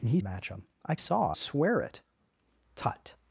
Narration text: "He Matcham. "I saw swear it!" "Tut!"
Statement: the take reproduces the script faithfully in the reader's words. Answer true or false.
true